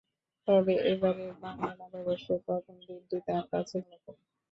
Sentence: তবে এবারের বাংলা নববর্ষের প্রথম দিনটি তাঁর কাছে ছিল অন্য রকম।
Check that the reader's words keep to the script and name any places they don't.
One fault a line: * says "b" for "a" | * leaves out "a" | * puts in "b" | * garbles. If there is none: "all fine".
* leaves out "ছিল অন্য"